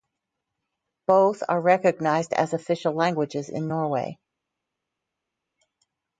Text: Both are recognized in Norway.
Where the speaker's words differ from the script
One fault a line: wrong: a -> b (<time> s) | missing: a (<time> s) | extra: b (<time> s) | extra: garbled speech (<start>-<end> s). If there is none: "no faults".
extra: as official languages (2.3 s)